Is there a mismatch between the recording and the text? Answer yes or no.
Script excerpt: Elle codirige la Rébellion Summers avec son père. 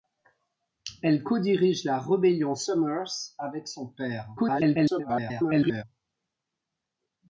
yes